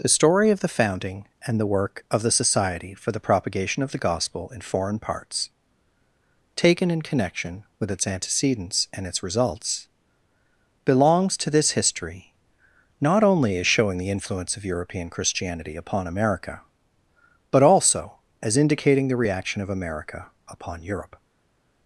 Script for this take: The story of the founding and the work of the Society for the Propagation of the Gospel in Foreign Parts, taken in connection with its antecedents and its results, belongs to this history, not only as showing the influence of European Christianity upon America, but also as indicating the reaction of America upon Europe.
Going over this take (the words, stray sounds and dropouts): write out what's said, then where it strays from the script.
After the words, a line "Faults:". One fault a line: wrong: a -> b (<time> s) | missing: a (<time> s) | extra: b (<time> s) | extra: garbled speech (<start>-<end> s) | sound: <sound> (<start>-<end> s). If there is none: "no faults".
The story of the founding and the work of the Society for the Propagation of the Gospel in Foreign Parts, taken in connection with its antecedents and its results, belongs to this history, not only as showing the influence of European Christianity upon America, but also as indicating the reaction of America upon Europe.
Faults:
no faults